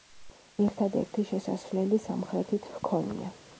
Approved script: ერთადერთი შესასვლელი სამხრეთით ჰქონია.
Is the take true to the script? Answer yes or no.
yes